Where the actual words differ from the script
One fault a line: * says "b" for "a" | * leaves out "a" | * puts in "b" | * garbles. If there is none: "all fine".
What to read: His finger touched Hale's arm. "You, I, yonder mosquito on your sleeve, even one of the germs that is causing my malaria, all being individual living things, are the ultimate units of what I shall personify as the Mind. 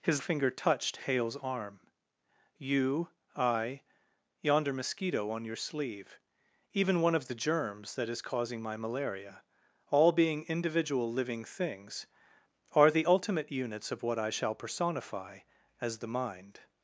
all fine